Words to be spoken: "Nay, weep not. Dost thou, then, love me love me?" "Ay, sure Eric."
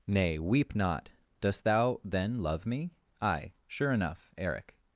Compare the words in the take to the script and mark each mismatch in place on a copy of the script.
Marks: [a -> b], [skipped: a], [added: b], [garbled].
"Nay, weep not. Dost thou, then, love me [skipped: love me?"] "Ay, sure [added: enough] Eric."